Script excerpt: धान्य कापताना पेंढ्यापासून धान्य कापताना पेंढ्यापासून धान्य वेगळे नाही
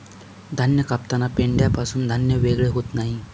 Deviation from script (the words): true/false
true